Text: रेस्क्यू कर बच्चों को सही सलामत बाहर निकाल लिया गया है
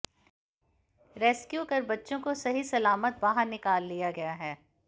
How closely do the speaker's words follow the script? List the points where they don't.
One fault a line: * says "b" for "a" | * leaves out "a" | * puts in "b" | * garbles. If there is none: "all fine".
all fine